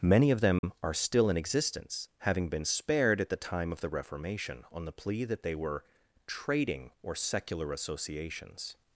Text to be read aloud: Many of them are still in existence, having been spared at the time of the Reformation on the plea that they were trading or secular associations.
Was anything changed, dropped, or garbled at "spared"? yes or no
no